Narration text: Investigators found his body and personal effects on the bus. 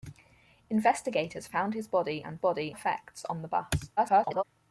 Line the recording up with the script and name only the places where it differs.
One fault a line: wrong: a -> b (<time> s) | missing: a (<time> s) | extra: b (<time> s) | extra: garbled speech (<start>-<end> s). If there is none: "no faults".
wrong: personal -> body (2.4 s)
extra: garbled speech (4.0-4.4 s)